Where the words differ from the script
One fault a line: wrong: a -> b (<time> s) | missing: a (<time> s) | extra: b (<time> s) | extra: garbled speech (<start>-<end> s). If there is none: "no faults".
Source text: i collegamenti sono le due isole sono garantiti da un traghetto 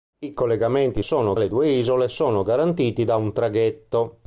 no faults